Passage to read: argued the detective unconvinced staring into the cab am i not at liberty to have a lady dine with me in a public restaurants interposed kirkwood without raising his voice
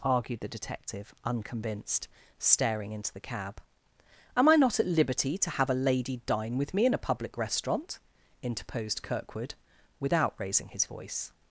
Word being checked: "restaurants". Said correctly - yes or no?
no